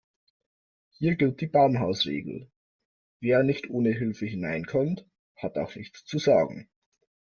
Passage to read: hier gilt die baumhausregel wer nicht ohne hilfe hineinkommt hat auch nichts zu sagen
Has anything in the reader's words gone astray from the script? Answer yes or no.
no